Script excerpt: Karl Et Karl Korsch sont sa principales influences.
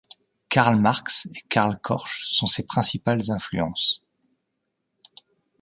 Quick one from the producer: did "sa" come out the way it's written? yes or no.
no